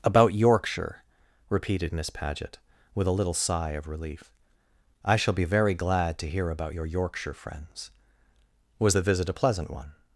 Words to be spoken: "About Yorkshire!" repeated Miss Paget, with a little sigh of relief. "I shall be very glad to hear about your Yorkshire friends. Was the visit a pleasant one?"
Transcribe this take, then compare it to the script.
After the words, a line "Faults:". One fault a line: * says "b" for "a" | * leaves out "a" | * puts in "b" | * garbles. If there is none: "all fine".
"About Yorkshire!" repeated Miss Paget, with a little sigh of relief. "I shall be very glad to hear about your Yorkshire friends. Was the visit a pleasant one?"
Faults:
all fine